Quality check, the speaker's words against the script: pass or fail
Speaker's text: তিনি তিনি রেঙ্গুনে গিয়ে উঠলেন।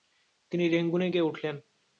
fail